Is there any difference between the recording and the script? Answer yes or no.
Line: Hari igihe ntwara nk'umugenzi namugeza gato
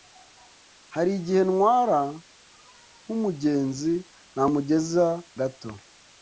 no